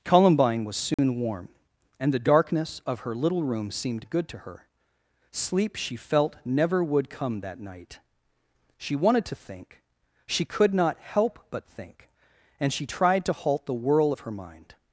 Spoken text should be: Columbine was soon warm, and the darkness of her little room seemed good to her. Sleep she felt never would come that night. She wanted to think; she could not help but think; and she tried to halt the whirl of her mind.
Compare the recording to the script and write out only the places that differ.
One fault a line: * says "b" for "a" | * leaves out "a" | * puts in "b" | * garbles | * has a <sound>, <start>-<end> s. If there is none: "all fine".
* has a dropout, 0.9-1.0 s